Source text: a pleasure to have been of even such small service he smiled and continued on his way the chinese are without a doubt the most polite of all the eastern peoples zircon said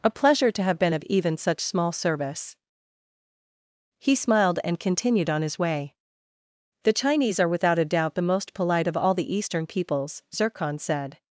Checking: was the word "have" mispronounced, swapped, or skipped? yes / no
no